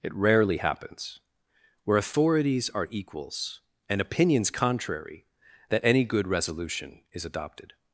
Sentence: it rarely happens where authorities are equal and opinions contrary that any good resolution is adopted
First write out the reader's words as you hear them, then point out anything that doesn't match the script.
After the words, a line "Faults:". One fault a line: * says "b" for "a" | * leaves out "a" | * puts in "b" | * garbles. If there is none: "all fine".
it rarely happens where authorities are equals and opinions contrary that any good resolution is adopted
Faults:
* says "equals" for "equal"